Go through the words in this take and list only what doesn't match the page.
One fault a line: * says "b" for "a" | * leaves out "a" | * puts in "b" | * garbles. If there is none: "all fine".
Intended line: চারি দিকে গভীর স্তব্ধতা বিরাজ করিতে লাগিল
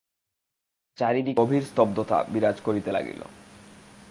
all fine